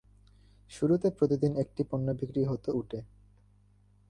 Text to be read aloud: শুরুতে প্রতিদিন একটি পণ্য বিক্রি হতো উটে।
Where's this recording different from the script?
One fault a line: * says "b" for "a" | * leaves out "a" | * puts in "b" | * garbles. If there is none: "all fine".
all fine